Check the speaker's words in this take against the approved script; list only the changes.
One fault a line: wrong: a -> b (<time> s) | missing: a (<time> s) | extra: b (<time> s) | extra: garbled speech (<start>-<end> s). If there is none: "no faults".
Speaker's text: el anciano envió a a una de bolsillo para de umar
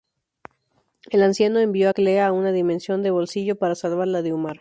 extra: clea (1.9 s)
extra: dimensión (2.5 s)
extra: salvarla (3.8 s)